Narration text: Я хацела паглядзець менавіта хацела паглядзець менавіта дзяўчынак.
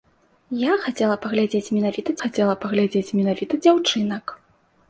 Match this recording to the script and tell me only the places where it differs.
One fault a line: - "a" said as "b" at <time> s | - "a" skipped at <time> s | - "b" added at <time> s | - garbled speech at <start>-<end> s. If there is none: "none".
none